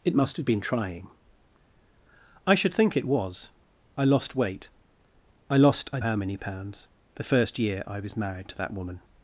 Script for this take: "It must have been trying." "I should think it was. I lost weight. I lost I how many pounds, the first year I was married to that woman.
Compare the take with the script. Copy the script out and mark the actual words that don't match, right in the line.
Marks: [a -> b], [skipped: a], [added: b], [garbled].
"It must have been trying." "I should think it was. I lost weight. I lost I how many pounds, the first year I was married to that woman.